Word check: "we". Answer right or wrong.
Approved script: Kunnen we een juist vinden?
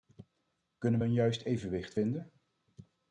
right